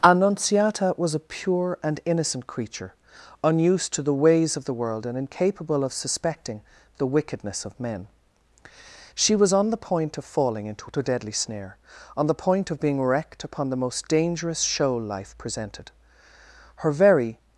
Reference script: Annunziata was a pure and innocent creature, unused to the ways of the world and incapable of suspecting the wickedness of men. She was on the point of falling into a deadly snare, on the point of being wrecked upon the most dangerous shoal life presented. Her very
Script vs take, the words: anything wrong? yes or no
no